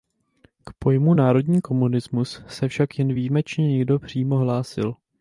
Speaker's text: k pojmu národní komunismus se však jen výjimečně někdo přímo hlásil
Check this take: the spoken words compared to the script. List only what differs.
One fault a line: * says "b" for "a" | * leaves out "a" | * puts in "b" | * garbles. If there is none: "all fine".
all fine